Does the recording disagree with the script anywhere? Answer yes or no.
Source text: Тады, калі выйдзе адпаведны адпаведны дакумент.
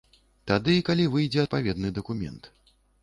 yes